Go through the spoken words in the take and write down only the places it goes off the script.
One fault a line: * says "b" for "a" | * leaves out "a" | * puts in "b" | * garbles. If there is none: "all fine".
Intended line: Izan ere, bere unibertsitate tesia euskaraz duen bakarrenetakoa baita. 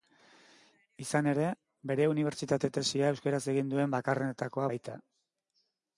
* puts in "egin"